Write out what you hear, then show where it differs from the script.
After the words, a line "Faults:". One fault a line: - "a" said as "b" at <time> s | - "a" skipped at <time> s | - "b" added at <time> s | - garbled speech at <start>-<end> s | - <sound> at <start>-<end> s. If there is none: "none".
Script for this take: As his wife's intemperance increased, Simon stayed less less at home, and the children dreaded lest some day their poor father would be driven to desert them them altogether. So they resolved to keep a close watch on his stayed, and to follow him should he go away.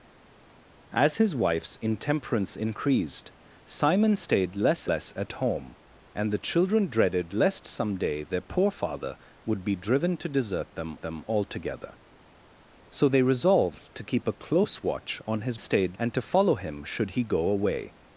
As his wife's intemperance increased, Simon stayed less less at home, and the children dreaded lest some day their poor father would be driven to desert them them altogether. So they resolved to keep a close watch on his stayed, and to follow him should he go away.
Faults:
none